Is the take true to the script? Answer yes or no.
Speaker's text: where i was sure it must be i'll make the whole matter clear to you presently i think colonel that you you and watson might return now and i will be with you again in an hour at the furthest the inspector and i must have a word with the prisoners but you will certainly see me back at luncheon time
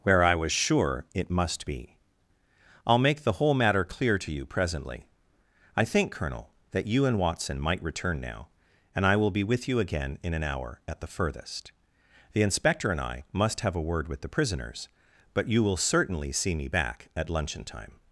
no